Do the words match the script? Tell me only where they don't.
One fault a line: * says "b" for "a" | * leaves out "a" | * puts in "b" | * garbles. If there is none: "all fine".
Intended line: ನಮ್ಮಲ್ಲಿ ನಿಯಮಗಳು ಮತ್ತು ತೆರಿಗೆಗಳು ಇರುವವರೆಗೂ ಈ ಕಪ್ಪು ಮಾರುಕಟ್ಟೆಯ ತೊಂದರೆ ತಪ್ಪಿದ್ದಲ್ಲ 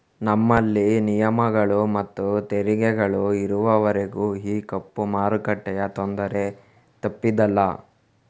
all fine